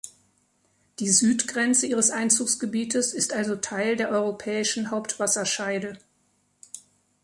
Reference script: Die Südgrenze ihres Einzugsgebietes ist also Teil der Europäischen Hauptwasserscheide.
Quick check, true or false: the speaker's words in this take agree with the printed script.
true